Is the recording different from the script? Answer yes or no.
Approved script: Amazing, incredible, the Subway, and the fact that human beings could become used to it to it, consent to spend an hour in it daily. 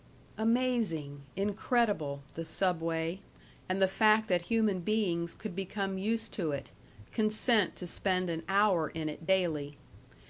yes